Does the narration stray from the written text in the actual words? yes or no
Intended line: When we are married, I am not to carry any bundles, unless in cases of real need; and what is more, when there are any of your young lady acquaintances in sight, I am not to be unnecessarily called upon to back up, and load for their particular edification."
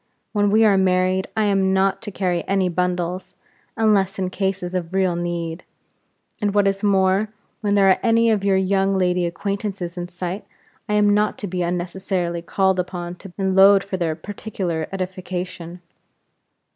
yes